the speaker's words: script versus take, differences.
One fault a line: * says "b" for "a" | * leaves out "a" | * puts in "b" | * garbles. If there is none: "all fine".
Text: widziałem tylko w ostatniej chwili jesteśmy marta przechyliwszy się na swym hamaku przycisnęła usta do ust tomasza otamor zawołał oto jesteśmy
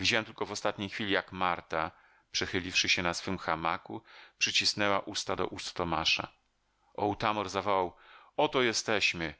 * says "jak" for "jesteśmy"